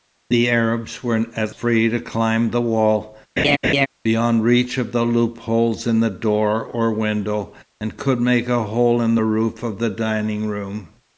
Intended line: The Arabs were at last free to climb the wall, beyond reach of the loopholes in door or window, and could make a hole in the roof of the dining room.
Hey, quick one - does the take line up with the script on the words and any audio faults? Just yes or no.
no